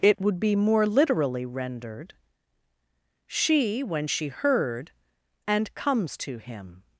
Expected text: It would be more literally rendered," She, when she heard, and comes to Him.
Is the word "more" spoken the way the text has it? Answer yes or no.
yes